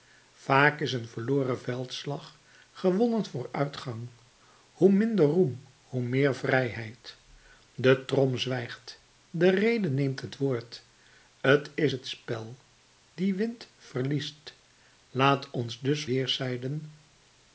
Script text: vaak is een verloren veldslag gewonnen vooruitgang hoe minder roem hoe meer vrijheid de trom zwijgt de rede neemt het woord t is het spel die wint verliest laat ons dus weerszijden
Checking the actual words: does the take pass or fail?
pass